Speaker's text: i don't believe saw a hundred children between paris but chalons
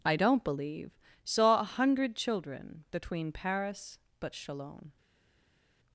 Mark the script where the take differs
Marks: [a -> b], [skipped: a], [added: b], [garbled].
i don't believe saw a hundred children between paris but chalons